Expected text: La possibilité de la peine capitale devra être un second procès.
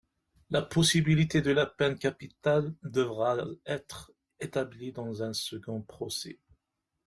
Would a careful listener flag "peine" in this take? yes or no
no